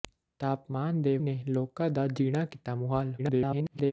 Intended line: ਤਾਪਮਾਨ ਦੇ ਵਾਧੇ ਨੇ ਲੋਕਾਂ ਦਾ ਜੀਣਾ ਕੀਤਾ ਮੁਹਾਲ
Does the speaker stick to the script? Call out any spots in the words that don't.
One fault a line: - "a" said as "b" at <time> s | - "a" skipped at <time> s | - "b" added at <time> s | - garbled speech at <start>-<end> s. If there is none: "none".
- "ਵਾਧੇ" skipped at 1.2 s
- garbled speech at 3.2-3.9 s